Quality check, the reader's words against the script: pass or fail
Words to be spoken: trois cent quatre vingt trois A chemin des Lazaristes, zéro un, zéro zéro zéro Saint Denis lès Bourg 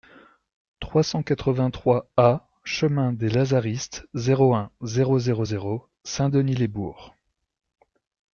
pass